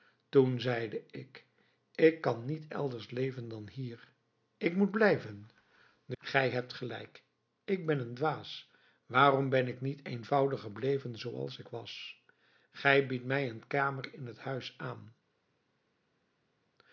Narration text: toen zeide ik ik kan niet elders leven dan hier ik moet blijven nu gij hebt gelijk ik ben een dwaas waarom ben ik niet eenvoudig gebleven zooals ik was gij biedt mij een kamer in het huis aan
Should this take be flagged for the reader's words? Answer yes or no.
no